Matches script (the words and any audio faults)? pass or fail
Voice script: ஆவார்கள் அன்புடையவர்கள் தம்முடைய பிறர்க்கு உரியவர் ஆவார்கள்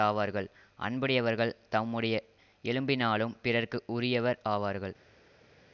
fail